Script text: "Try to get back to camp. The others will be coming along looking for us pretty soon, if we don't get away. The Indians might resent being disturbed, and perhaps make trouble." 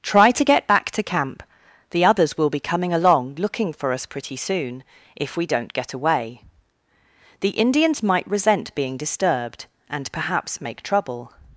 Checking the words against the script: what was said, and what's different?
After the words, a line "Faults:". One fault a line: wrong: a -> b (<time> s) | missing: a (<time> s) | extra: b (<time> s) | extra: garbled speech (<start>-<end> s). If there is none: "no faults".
"Try to get back to camp. The others will be coming along looking for us pretty soon, if we don't get away. The Indians might resent being disturbed, and perhaps make trouble."
Faults:
no faults